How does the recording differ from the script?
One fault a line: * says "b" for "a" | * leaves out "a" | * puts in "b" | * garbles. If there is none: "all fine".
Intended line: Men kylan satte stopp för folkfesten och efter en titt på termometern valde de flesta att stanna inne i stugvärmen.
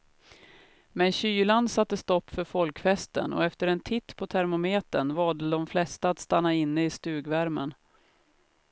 all fine